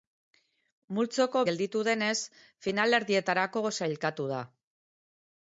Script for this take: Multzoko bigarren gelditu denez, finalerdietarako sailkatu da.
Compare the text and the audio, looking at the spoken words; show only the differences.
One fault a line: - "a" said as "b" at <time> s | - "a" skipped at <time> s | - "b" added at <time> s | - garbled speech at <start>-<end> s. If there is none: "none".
- "bigarren" skipped at 1.4 s